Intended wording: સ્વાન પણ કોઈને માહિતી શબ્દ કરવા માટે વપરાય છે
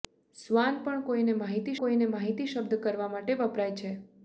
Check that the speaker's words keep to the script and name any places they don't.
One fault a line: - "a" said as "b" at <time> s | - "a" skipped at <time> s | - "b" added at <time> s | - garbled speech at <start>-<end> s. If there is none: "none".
- "કોઈને માહિતી" added at 1.8 s